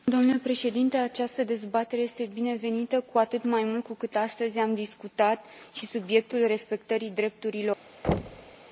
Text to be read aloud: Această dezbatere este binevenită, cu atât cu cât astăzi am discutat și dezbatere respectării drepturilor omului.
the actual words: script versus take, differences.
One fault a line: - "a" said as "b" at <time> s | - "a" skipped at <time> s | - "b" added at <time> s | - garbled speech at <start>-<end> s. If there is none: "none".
- "mai mult" added at 3.4 s
- "dezbatere" said as "subiectul" at 5.9 s